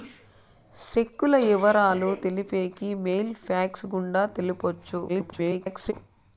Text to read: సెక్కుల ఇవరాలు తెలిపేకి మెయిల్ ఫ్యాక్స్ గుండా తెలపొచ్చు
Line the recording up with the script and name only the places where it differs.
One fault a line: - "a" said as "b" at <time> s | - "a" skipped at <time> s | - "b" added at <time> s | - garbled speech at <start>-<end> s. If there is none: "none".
- garbled speech at 5.1-5.9 s